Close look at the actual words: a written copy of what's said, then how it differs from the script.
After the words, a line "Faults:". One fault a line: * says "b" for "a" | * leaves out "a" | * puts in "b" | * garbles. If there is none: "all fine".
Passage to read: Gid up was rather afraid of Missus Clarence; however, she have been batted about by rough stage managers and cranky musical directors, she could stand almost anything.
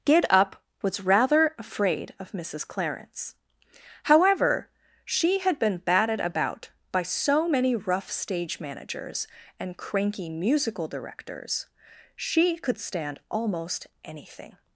Gid up was rather afraid of Missus Clarence; however, she had been batted about by so many rough stage managers and cranky musical directors, she could stand almost anything.
Faults:
* says "had" for "have"
* puts in "so many"